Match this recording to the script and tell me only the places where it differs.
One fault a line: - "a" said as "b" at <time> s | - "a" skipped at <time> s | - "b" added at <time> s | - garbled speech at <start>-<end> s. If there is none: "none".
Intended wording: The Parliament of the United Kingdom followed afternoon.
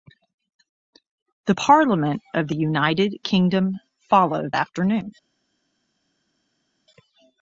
none